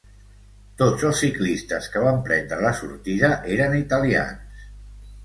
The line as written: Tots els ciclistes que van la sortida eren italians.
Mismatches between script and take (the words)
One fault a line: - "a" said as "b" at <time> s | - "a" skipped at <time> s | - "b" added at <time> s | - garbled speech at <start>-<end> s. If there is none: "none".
- "prendre" added at 2.3 s